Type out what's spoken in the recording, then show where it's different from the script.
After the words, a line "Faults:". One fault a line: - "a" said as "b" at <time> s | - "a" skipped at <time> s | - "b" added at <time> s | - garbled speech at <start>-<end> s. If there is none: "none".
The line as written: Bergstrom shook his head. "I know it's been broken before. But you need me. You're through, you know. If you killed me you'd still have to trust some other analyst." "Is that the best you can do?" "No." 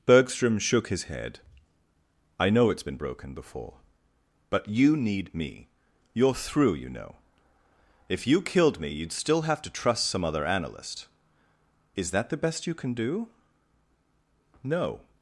Bergstrom shook his head. "I know it's been broken before. But you need me. You're through, you know. If you killed me you'd still have to trust some other analyst." "Is that the best you can do?" "No."
Faults:
none